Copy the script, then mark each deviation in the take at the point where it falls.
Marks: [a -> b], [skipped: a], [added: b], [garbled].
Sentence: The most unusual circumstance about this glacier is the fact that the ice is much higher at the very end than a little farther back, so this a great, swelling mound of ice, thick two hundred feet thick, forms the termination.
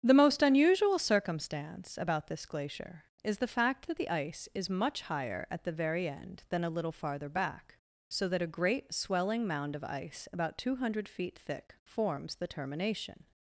The most unusual circumstance about this glacier is the fact that the ice is much higher at the very end than a little farther back, so [this -> that] a great, swelling mound of ice, [thick -> about] two hundred feet thick, forms the termination.